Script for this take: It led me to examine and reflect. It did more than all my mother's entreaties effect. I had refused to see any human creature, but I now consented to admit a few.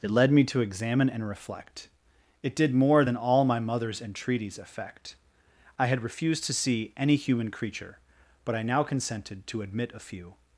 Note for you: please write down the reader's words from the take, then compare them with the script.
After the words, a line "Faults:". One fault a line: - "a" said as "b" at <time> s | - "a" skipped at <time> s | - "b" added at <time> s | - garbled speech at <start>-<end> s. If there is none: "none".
It led me to examine and reflect. It did more than all my mother's entreaties effect. I had refused to see any human creature, but I now consented to admit a few.
Faults:
none